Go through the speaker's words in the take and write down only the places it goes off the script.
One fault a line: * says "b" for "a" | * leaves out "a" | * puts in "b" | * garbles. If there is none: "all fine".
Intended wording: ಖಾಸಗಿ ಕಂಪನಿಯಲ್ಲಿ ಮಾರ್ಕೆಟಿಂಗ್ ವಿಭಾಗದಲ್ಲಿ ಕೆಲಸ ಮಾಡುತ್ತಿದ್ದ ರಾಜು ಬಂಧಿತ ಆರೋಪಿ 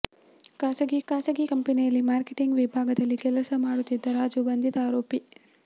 * puts in "ಖಾಸಗಿ"